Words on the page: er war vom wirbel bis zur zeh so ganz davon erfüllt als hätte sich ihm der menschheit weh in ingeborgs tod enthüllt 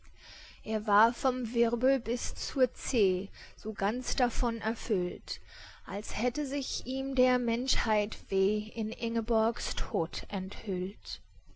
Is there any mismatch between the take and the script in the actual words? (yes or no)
no